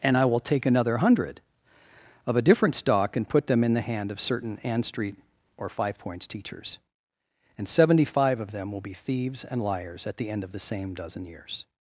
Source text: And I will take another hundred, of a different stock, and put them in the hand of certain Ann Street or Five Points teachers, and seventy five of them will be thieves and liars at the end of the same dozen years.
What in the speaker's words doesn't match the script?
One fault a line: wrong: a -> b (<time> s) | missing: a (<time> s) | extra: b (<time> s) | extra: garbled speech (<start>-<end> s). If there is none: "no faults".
no faults